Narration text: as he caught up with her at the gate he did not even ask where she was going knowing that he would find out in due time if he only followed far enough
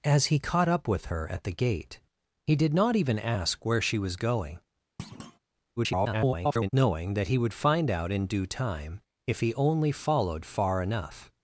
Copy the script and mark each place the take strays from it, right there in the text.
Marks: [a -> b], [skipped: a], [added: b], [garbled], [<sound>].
as he caught up with her at the gate he did not even ask where she was going [thud] [garbled] knowing that he would find out in due time if he only followed far enough